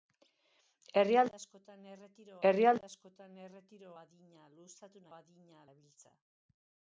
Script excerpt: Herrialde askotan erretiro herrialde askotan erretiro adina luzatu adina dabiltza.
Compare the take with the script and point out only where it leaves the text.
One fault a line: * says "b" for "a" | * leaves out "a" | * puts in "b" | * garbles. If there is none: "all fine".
all fine